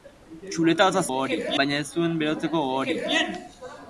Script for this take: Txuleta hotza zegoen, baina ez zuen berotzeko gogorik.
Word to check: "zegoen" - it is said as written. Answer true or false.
false